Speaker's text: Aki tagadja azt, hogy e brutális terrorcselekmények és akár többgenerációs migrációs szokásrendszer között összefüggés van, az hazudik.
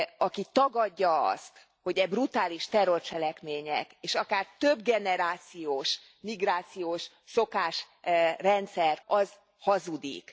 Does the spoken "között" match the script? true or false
false